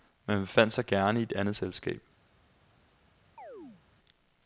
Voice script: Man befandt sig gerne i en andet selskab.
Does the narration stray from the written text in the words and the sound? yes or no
yes